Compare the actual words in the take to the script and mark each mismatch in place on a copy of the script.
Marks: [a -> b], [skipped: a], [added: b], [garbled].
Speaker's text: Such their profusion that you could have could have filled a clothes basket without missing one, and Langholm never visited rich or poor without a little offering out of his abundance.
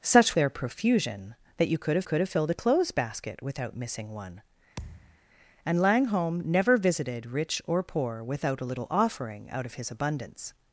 Such their profusion that you could have could have filled a clothes basket without missing one, and Langholm never visited rich or poor without a little offering out of his abundance.